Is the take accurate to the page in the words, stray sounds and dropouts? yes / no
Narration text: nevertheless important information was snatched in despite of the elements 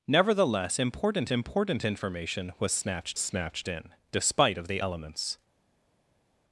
no